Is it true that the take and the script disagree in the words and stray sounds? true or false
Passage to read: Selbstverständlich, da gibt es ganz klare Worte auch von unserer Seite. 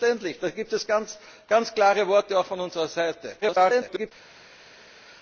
true